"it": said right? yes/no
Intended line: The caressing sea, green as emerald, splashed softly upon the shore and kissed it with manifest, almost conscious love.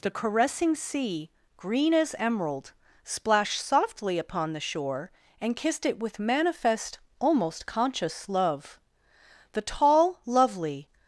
yes